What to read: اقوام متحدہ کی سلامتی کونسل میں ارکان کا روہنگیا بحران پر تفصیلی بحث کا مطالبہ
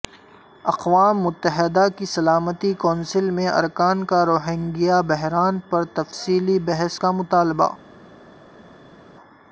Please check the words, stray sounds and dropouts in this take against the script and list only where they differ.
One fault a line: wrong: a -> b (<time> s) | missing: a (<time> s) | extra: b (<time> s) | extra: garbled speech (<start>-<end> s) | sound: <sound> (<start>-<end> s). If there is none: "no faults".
no faults